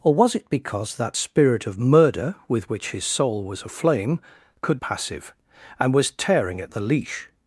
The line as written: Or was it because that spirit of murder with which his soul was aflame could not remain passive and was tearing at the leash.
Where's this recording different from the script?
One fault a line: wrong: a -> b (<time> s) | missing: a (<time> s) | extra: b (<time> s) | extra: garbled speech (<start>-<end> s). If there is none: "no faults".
missing: not remain (4.8 s)